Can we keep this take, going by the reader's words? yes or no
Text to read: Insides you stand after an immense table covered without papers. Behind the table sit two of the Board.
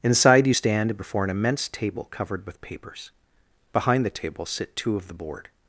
no